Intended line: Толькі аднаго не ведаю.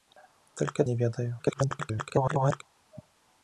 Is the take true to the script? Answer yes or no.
no